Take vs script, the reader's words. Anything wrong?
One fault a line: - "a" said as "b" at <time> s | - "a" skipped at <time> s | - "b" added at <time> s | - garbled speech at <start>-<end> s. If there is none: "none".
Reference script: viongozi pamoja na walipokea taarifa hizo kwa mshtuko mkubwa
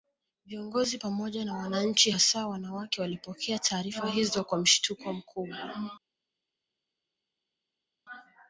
- "wananchi hasa wanawake" added at 1.6 s